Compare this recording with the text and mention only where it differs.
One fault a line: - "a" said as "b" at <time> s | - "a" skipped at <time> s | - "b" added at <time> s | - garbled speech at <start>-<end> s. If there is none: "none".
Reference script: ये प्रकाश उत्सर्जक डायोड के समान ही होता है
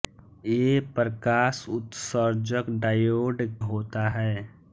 - "के समान ही" skipped at 3.4 s